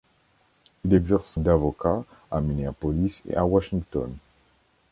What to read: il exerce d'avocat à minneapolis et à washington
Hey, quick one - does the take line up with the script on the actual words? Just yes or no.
yes